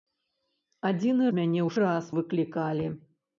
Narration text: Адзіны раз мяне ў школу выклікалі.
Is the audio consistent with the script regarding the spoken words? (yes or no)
no